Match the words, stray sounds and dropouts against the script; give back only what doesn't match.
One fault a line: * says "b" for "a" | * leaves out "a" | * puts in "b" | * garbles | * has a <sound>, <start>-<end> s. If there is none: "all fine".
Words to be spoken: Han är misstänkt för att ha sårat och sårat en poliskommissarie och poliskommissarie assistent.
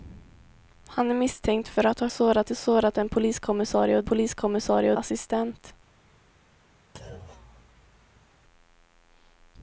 * has a thud, 6.9-8.3 s